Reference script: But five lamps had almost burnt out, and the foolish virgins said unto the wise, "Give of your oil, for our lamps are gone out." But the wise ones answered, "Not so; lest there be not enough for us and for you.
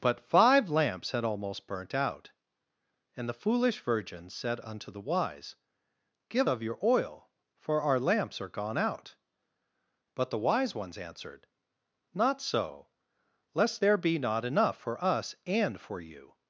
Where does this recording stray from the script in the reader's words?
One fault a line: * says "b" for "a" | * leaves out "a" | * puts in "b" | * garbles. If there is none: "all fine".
all fine